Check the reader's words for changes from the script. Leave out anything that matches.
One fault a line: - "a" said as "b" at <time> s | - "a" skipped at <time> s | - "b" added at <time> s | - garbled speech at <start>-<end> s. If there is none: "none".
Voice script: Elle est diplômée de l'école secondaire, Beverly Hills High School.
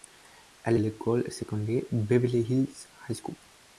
- "est diplômée de" skipped at 0.8 s